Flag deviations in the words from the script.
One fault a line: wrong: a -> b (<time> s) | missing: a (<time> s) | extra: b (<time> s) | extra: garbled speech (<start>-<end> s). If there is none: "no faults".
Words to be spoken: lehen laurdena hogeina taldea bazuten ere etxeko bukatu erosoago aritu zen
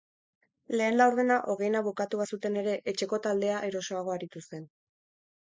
wrong: taldea -> bukatu (1.9 s)
wrong: bukatu -> taldea (3.3 s)